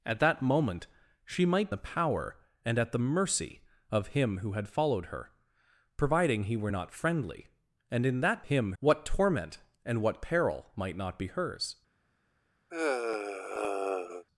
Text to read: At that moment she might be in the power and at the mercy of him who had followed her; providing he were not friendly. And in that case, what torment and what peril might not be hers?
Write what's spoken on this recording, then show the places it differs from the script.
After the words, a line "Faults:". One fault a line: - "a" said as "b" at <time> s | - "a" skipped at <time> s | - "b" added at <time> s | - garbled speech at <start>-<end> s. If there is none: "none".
At that moment she might the power and at the mercy of him who had followed her; providing he were not friendly. And in that him, what torment and what peril might not be hers?
Faults:
- "be in" skipped at 1.7 s
- "case" said as "him" at 8.4 s